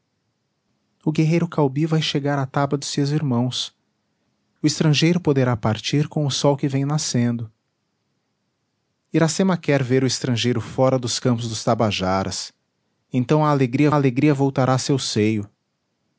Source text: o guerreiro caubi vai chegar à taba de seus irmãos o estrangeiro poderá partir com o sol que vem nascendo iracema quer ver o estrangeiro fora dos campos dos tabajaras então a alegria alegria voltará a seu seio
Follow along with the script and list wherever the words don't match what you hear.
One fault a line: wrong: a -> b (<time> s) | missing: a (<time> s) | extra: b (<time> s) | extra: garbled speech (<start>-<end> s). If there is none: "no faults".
no faults